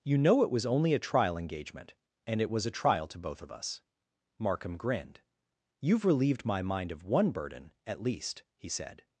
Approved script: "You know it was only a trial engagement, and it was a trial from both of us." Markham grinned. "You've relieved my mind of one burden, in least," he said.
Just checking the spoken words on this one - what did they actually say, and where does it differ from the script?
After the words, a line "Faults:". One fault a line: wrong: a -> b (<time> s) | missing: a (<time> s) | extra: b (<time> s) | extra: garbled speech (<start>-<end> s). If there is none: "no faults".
"You know it was only a trial engagement, and it was a trial to both of us." Markham grinned. "You've relieved my mind of one burden, at least," he said.
Faults:
wrong: from -> to (3.1 s)
wrong: in -> at (7.8 s)